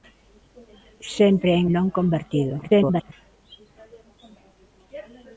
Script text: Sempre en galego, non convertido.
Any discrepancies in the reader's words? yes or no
yes